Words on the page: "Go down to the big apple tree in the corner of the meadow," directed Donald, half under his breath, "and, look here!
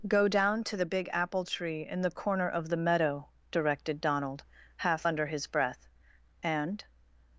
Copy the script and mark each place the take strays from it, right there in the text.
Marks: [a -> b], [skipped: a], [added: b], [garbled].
"Go down to the big apple tree in the corner of the meadow," directed Donald, half under his breath, "and, [skipped: look here!]